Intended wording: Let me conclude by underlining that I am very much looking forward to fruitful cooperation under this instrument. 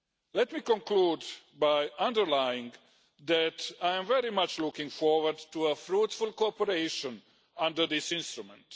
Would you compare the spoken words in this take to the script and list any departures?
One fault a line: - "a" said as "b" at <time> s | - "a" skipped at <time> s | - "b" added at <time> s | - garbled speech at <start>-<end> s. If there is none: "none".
none